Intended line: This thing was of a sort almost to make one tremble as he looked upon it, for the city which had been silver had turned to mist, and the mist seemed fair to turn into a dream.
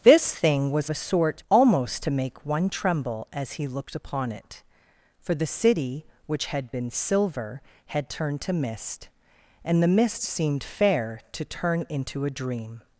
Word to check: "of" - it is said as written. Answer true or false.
false